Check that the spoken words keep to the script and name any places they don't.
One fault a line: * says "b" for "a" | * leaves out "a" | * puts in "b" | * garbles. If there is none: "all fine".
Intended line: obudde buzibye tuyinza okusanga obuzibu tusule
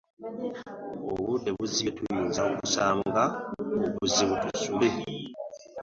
all fine